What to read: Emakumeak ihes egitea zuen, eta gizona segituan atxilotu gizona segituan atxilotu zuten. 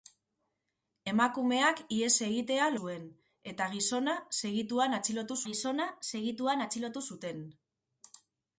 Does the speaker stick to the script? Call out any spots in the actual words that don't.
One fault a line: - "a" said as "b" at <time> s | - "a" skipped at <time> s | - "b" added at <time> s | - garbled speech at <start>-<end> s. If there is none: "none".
none